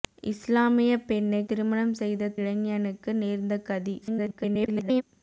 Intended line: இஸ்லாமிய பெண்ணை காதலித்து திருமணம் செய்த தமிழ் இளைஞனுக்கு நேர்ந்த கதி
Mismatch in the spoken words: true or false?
true